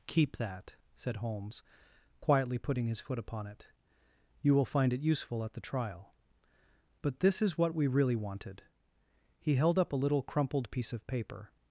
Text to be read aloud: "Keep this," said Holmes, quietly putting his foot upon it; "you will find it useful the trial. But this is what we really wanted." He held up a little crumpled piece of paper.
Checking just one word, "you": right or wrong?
right